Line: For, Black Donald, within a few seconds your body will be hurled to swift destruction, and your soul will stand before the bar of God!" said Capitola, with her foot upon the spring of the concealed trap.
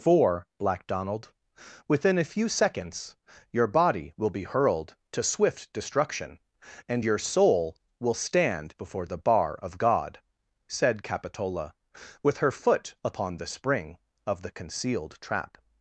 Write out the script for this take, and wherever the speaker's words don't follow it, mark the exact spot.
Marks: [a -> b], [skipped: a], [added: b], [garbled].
For, Black Donald, within a few seconds your body will be hurled to swift destruction, and your soul will stand before the bar of God!" said Capitola, with her foot upon the spring of the concealed trap.